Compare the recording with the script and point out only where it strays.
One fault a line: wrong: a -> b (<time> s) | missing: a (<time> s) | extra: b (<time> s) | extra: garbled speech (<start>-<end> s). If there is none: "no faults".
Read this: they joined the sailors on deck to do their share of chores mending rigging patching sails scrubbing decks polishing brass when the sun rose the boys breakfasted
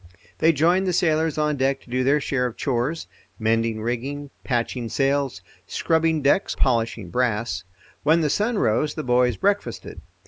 no faults